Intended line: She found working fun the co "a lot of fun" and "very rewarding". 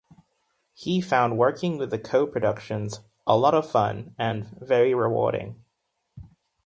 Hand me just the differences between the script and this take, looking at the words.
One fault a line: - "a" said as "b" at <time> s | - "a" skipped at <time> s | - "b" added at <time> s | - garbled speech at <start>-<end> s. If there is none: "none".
- "She" said as "He" at 0.7 s
- "fun" said as "with" at 1.8 s
- "productions" added at 2.2 s